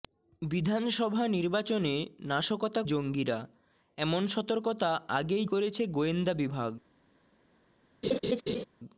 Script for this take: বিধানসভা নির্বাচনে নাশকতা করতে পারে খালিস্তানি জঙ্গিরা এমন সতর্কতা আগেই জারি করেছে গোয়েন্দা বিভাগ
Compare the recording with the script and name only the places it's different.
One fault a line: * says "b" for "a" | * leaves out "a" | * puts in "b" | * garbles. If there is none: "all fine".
* leaves out "করতে পারে খালিস্তানি"
* leaves out "জারি"